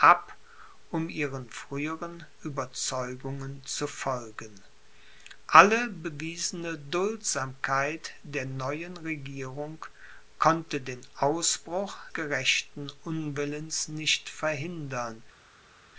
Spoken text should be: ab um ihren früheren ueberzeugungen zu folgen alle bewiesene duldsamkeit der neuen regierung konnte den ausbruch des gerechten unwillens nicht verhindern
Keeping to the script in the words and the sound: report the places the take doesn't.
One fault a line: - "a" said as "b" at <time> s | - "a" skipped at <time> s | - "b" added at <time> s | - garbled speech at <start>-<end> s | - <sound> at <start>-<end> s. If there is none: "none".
- "des" skipped at 12.0 s